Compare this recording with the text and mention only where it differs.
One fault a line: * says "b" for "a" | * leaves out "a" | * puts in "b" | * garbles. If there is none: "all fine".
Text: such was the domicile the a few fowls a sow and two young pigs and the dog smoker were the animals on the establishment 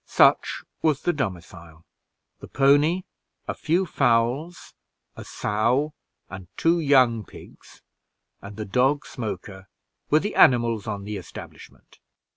* puts in "pony"